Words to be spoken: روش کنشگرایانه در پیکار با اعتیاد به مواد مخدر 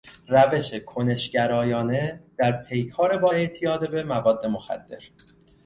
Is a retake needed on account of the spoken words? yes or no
no